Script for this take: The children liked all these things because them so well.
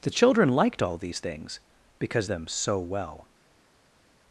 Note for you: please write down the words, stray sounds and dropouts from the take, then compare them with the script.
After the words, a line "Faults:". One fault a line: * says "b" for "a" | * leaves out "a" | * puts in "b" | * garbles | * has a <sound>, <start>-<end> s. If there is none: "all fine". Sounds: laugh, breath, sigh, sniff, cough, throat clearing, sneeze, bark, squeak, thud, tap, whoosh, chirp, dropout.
The children liked all these things because them so well.
Faults:
all fine